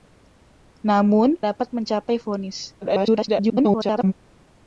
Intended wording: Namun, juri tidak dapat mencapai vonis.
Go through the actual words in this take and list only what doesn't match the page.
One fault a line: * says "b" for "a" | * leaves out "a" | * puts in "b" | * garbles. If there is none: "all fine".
* leaves out "juri tidak"
* garbles